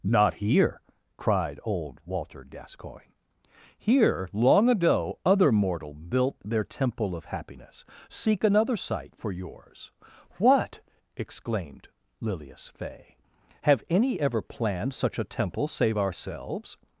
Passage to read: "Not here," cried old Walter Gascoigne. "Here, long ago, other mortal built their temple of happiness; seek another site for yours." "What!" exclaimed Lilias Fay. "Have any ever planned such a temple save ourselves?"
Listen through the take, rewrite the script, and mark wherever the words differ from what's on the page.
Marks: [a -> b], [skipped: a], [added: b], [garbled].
"Not here," cried old Walter Gascoigne. "Here, long ago, other mortal built their temple of happiness; seek another site for yours." "What!" exclaimed Lilias Fay. "Have any ever planned such a temple save ourselves?"